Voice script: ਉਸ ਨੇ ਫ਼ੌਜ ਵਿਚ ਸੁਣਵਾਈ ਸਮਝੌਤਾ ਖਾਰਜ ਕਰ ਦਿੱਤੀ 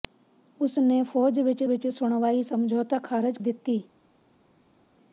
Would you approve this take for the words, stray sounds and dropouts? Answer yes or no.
no